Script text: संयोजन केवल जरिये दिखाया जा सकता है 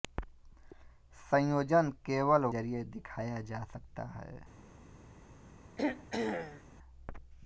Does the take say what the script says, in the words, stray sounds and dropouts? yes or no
no